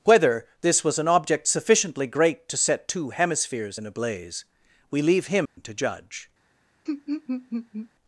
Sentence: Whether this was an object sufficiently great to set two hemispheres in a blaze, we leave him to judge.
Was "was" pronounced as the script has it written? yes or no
yes